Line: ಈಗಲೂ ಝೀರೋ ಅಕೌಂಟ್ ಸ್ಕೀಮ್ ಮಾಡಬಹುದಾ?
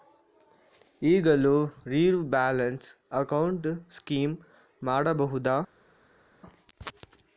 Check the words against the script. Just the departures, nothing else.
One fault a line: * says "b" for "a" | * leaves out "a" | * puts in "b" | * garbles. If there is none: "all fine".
* puts in "ಬ್ಯಾಲೆನ್ಸ್"